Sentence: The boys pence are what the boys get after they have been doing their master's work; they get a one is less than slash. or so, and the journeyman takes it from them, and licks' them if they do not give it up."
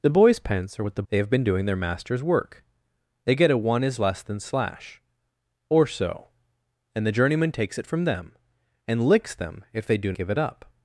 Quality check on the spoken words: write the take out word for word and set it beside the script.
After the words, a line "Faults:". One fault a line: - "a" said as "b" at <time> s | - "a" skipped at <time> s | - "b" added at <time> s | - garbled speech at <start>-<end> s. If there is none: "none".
The boys pence are what the they have been doing their master's work; they get a one is less than slash. or so, and the journeyman takes it from them, and licks' them if they do give it up."
Faults:
- "boys get after" skipped at 1.0 s
- "not" skipped at 10.1 s